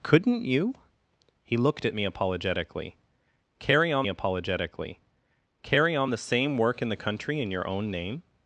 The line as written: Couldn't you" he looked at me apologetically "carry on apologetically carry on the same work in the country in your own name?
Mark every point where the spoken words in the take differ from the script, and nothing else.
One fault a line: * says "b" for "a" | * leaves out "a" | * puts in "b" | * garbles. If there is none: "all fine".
all fine